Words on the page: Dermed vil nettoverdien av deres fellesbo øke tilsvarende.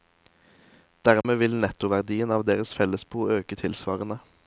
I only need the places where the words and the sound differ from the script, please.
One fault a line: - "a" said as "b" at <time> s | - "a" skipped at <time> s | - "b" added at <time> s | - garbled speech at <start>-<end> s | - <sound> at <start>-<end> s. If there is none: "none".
- dropout at 1.2-1.2 s